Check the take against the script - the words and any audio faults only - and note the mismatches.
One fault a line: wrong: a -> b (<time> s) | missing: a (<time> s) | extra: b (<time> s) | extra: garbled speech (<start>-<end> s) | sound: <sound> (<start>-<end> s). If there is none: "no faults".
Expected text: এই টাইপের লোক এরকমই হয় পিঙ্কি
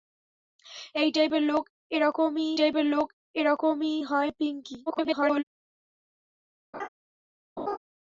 extra: টাইপের লোক এরকমই (2.5 s)
extra: garbled speech (4.9-5.4 s)
sound: laugh (6.7-6.9 s)
sound: laugh (7.6-7.8 s)